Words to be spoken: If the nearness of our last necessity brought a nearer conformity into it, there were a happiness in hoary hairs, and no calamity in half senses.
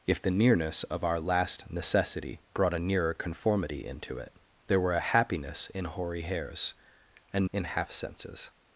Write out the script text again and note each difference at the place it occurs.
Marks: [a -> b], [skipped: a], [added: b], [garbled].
If the nearness of our last necessity brought a nearer conformity into it, there were a happiness in hoary hairs, and [skipped: no calamity] in half senses.